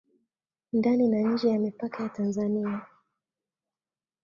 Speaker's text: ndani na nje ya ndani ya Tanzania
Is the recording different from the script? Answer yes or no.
yes